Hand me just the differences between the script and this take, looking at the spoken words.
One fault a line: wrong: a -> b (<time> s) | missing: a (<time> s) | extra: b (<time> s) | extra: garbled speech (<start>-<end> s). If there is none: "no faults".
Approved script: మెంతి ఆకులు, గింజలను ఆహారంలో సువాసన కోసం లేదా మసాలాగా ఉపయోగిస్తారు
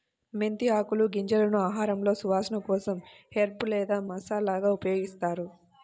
extra: హెర్బ్ (3.3 s)